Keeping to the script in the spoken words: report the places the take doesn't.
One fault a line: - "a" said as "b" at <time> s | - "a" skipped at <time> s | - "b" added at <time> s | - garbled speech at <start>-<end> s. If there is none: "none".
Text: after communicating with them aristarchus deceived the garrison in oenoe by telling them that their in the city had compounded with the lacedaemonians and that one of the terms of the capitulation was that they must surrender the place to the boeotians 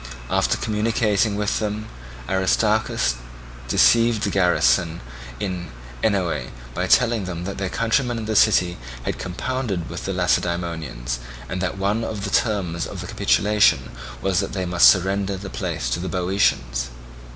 - "countrymen" added at 7.7 s